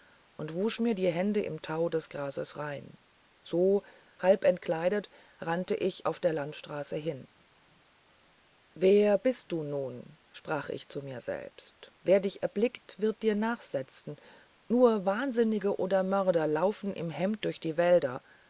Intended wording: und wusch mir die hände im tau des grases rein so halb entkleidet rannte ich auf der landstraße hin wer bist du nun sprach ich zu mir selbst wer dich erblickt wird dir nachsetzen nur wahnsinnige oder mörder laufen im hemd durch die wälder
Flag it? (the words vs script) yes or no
no